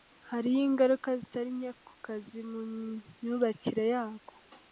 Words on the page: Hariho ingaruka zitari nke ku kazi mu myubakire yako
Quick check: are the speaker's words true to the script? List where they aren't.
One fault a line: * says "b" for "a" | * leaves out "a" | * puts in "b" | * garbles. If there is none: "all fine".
all fine